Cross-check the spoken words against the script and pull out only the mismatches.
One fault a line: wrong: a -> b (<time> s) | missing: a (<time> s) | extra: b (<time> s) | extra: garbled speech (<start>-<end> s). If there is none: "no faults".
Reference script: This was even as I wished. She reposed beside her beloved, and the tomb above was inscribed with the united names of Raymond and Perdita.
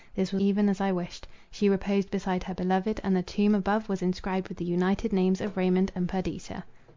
no faults